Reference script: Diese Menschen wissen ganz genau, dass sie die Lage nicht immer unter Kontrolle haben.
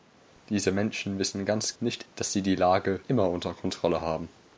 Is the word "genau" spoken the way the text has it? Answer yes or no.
no